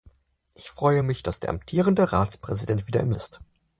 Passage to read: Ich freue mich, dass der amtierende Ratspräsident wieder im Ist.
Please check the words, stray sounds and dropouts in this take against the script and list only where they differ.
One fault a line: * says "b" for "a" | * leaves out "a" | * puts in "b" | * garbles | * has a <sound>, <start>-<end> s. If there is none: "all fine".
all fine